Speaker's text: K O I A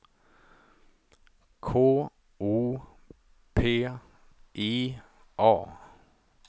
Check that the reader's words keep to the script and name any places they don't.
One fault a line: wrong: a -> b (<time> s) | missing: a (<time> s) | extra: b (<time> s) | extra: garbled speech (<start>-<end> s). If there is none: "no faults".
extra: P (3.5 s)